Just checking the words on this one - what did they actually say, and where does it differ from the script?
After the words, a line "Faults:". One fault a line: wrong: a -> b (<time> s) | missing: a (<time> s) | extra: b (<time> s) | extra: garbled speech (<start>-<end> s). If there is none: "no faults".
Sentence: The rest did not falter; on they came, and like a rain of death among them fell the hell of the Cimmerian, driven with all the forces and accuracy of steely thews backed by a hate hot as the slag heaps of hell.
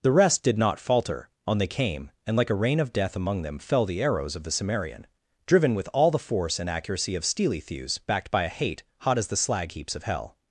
The rest did not falter; on they came, and like a rain of death among them fell the arrows of the Cimmerian, driven with all the force and accuracy of steely thews backed by a hate hot as the slag heaps of hell.
Faults:
wrong: hell -> arrows (4.0 s)
wrong: forces -> force (6.2 s)